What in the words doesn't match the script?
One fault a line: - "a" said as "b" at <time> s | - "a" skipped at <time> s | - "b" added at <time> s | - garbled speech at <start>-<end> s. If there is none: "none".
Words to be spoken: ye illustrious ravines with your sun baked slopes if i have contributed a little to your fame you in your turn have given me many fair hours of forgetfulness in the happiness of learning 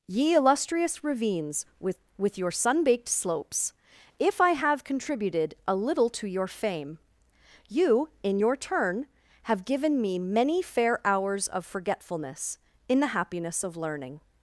- "with" added at 2.2 s